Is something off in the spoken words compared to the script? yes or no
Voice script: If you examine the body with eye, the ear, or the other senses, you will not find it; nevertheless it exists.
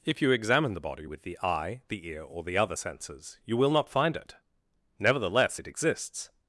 yes